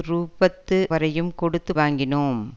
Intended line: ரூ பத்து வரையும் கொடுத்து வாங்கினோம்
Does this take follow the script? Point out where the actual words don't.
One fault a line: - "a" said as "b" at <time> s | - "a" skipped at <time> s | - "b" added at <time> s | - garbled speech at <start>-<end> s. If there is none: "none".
none